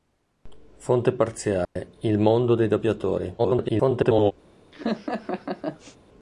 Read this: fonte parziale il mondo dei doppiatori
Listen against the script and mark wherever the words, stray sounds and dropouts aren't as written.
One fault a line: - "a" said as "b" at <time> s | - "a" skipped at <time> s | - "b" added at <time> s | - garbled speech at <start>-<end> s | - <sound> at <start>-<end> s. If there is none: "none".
- dropout at 1.6-1.8 s
- garbled speech at 3.4-4.3 s
- laugh at 4.7-6.0 s